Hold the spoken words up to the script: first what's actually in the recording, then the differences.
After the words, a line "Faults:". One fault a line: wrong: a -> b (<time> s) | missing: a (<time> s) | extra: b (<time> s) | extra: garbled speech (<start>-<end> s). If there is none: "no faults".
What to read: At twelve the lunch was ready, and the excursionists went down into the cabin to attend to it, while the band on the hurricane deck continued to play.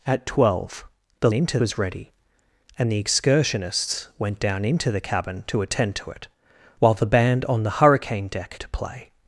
At twelve the into was ready, and the excursionists went down into the cabin to attend to it, while the band on the hurricane deck to play.
Faults:
wrong: lunch -> into (1.3 s)
missing: continued (8.6 s)